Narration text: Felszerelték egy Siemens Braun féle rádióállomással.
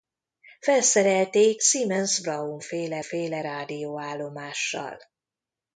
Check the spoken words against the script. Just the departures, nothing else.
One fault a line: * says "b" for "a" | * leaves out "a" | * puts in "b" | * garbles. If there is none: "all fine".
* leaves out "egy"
* puts in "féle"